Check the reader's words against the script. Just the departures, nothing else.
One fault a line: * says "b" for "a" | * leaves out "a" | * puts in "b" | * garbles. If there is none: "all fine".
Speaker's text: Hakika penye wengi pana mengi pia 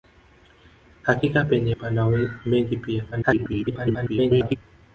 * leaves out "wengi"
* garbles